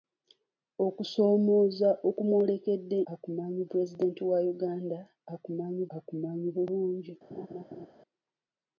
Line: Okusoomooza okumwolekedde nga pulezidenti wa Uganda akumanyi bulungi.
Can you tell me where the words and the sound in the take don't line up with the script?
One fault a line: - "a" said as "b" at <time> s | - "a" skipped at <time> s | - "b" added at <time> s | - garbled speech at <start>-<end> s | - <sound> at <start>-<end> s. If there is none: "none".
- "nga" said as "akumanyi" at 3.1 s
- "akumanyi" added at 6.0 s
- laugh at 7.3-7.9 s